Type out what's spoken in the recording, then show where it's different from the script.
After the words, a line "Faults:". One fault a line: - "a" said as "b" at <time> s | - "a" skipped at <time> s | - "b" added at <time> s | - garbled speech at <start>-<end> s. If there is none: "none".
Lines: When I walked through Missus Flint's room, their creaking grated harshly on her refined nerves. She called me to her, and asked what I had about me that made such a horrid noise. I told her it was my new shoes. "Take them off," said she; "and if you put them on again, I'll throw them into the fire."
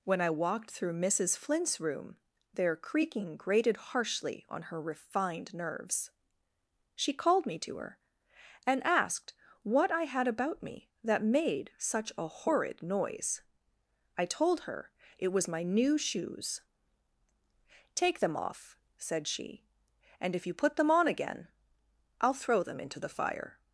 When I walked through Missus Flint's room, their creaking grated harshly on her refined nerves. She called me to her, and asked what I had about me that made such a horrid noise. I told her it was my new shoes. "Take them off," said she; "and if you put them on again, I'll throw them into the fire."
Faults:
none